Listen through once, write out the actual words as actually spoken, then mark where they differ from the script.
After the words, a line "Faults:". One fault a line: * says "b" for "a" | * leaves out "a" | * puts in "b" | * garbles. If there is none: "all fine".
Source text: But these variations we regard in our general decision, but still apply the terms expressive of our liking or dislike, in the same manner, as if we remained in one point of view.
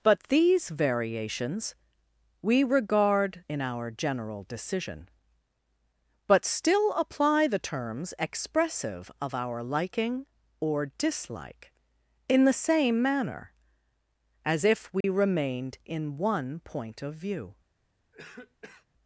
But these variations we regard in our general decision, but still apply the terms expressive of our liking or dislike, in the same manner, as if we remained in one point of view.
Faults:
all fine